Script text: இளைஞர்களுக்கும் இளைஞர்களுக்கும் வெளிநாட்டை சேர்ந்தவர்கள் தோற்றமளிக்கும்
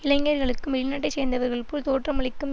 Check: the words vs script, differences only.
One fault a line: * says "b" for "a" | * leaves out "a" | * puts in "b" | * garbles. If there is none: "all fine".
* leaves out "இளைஞர்களுக்கும்"
* puts in "போல்"